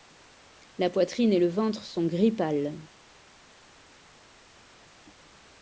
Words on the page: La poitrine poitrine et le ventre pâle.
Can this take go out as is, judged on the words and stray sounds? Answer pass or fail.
fail